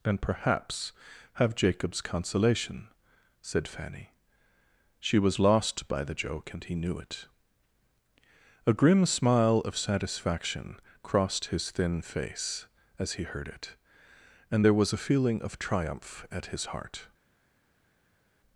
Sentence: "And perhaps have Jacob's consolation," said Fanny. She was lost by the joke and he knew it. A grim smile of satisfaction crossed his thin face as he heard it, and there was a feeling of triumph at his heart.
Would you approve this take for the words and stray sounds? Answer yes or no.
yes